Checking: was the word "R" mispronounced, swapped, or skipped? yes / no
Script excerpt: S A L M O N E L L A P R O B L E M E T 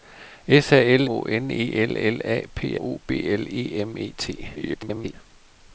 yes